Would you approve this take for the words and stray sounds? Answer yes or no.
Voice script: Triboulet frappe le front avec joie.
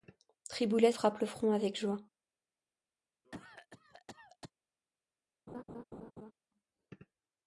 no